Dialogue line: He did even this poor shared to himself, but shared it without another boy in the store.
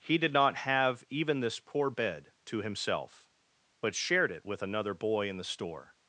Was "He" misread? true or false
false